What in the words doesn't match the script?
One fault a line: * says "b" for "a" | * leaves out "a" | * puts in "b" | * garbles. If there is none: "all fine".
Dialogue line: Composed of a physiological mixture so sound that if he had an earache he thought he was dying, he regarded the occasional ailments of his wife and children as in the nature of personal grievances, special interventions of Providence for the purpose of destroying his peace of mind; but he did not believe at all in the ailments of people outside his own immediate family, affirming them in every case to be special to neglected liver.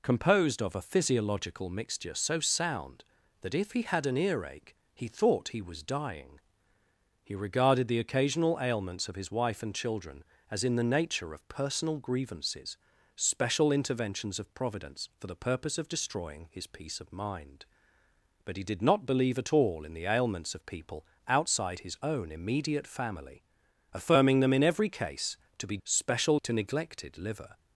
all fine